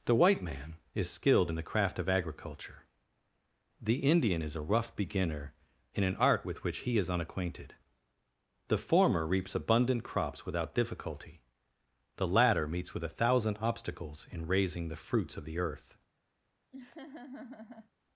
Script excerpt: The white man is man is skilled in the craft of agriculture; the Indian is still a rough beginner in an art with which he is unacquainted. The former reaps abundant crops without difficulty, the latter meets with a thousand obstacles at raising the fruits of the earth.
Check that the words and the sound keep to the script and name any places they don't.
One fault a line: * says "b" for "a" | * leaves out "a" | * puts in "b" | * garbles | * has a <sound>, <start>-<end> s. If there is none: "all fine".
* leaves out "man is"
* leaves out "still"
* says "in" for "at"
* has a laugh, 16.7-17.9 s